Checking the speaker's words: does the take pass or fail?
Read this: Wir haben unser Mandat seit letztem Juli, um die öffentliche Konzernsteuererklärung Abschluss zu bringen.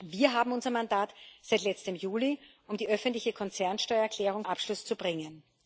pass